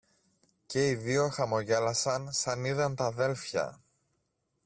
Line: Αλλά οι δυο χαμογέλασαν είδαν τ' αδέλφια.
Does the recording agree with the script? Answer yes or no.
no